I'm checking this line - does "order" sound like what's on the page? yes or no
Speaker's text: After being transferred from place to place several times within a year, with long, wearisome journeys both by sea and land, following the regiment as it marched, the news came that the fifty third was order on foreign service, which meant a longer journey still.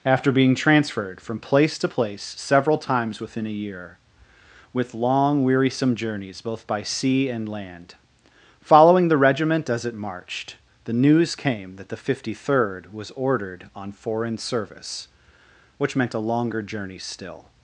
no